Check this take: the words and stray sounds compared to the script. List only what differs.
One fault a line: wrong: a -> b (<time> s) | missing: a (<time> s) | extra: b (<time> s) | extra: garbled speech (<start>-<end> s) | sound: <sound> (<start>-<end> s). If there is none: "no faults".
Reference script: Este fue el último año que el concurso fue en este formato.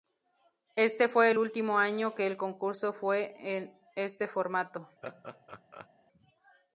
sound: laugh (5.0-5.9 s)